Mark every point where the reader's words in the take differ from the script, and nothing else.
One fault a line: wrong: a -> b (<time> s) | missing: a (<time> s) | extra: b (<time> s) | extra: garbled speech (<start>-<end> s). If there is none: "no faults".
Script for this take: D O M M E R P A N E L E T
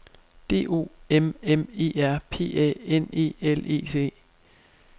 no faults